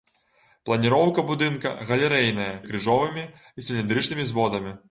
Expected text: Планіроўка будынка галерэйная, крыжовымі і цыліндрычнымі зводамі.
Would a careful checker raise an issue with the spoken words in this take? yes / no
no